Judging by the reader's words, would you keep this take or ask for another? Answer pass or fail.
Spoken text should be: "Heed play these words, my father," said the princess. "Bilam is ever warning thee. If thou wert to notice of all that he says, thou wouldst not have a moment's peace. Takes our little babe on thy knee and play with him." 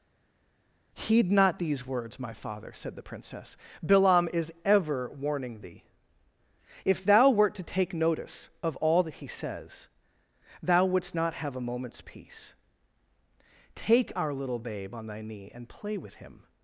fail